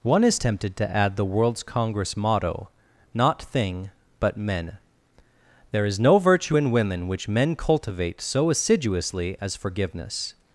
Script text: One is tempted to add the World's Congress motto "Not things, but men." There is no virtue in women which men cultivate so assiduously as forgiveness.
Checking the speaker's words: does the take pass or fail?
fail